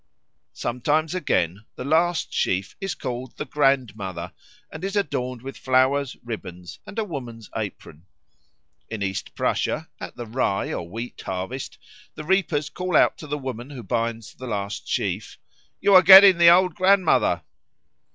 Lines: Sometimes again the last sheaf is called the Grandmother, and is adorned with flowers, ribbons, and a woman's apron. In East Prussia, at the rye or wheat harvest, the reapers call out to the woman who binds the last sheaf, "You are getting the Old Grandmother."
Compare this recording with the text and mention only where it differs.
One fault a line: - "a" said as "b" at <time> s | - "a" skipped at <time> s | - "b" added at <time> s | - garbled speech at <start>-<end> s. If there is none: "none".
none